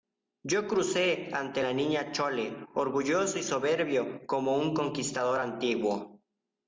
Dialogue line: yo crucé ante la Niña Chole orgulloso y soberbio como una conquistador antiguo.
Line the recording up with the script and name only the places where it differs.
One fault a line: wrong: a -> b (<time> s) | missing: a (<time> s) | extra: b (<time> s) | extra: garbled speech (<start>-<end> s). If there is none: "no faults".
wrong: una -> un (4.6 s)